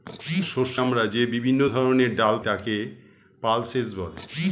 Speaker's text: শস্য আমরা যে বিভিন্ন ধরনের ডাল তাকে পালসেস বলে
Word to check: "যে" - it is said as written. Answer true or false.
true